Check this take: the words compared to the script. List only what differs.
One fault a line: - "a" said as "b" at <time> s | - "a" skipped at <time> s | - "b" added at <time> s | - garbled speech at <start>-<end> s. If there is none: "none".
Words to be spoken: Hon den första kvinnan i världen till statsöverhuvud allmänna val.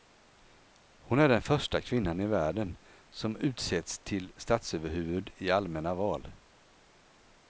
- "är" added at 1.2 s
- "som utsetts" added at 3.1 s
- "i" added at 5.3 s